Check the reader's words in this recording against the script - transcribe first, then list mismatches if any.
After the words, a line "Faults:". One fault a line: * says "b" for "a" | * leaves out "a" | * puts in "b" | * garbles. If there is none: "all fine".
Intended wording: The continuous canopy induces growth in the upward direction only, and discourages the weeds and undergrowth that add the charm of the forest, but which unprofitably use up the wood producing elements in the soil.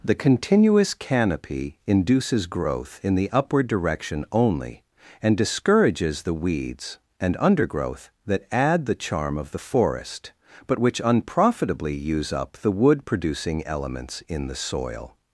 The continuous canopy induces growth in the upward direction only, and discourages the weeds and undergrowth that add the charm of the forest, but which unprofitably use up the wood producing elements in the soil.
Faults:
all fine